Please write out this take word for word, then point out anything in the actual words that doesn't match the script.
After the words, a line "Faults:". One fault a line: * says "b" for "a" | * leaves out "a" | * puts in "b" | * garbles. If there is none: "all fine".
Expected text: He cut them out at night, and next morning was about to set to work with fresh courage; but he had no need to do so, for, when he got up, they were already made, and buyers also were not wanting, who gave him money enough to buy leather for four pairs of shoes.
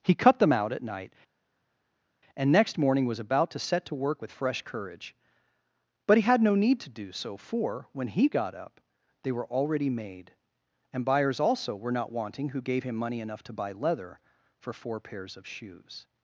He cut them out at night, and next morning was about to set to work with fresh courage; but he had no need to do so, for, when he got up, they were already made, and buyers also were not wanting, who gave him money enough to buy leather for four pairs of shoes.
Faults:
all fine